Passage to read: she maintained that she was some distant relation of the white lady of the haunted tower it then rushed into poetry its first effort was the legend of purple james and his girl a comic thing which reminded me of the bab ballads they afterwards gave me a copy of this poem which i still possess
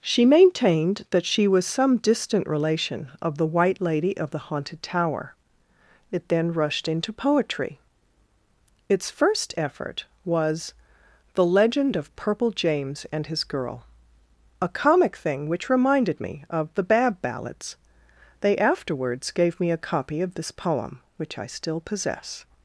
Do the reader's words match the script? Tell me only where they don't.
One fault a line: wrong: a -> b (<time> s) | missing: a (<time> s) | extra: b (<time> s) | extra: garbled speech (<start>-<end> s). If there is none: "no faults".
no faults